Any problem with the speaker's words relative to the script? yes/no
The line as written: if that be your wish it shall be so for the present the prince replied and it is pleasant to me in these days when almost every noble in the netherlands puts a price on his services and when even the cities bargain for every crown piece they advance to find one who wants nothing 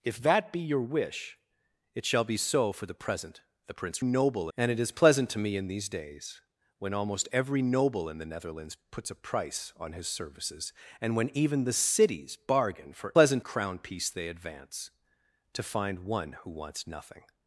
yes